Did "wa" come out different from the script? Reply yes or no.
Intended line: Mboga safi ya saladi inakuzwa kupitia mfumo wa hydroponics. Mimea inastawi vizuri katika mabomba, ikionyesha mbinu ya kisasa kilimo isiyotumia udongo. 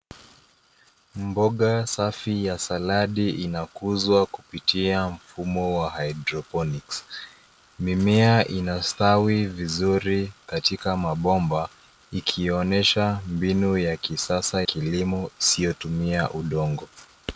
no